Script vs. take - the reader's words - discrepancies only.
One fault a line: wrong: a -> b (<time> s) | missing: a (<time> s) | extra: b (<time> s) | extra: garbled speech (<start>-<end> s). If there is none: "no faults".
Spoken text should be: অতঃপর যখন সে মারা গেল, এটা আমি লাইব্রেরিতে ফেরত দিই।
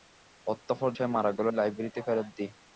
missing: যখন (0.9 s)
missing: এটা আমি (1.5 s)